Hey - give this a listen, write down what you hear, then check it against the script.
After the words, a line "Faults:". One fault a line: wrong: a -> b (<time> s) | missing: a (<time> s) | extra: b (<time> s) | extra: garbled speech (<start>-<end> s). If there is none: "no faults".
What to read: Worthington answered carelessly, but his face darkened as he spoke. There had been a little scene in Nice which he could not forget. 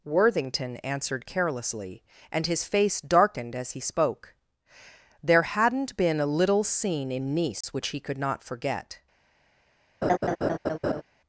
Worthington answered carelessly, and his face darkened as he spoke. There hadn't been a little scene in Nice which he could not forget.
Faults:
wrong: but -> and (2.3 s)
wrong: had -> hadn't (5.4 s)